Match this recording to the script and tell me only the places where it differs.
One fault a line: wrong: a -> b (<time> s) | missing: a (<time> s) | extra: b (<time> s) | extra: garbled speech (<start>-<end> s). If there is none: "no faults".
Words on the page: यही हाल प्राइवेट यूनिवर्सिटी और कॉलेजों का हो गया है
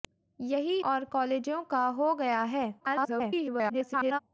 missing: हाल प्राइवेट यूनिवर्सिटी (0.8 s)
extra: garbled speech (2.8-4.2 s)